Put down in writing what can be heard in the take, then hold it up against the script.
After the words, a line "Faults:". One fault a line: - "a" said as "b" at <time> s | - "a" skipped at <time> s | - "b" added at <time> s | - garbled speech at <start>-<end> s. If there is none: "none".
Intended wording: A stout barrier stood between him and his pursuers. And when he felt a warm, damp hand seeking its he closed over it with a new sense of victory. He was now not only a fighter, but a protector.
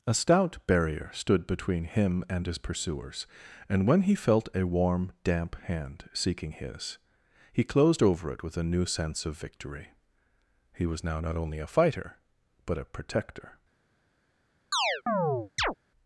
A stout barrier stood between him and his pursuers. And when he felt a warm, damp hand seeking his he closed over it with a new sense of victory. He was now not only a fighter, but a protector.
Faults:
- "its" said as "his" at 6.5 s